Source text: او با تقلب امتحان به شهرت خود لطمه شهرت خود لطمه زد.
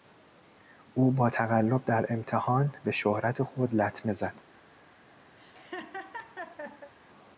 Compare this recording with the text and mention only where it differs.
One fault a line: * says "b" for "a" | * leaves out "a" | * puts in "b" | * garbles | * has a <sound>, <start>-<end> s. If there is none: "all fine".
* puts in "در"
* leaves out "شهرت خود لطمه"
* has a laugh, 5.4-6.9 s